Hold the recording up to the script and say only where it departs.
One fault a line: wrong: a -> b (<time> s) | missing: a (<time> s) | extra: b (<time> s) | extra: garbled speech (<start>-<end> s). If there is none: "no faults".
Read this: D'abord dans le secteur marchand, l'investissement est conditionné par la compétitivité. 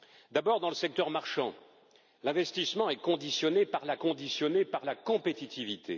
extra: conditionné par la (4.0 s)